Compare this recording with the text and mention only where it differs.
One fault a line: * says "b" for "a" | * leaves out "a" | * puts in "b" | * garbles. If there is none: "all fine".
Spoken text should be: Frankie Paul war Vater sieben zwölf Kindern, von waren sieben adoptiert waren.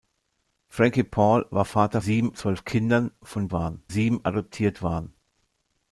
all fine